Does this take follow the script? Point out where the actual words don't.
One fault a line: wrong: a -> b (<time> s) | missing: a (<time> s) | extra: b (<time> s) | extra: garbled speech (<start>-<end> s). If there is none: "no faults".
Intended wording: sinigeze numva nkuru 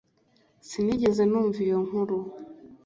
extra: iyo (1.6 s)